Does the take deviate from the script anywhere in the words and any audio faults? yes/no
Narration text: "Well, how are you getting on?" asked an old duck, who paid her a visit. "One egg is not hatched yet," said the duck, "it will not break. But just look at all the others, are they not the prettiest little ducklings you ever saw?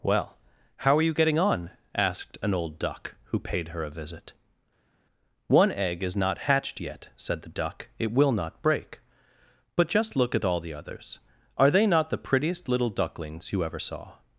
no